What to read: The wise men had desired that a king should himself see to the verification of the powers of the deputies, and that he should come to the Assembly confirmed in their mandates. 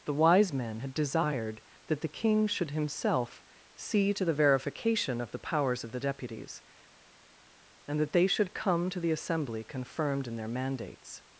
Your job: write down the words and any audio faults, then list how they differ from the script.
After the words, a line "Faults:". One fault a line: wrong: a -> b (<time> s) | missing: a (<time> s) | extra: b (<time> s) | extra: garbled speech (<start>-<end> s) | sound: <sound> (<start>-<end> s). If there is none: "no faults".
The wise men had desired that the king should himself see to the verification of the powers of the deputies, and that they should come to the Assembly confirmed in their mandates.
Faults:
wrong: a -> the (2.0 s)
wrong: he -> they (8.1 s)